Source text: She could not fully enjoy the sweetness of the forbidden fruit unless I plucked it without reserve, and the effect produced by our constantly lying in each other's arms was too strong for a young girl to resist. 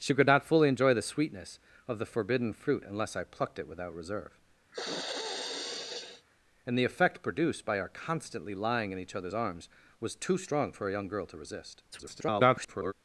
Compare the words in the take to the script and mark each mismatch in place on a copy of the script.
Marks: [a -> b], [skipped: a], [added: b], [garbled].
She could not fully enjoy the sweetness of the forbidden fruit unless I plucked it without reserve, and the effect produced by our constantly lying in each other's arms was too strong for a young girl to resist. [garbled]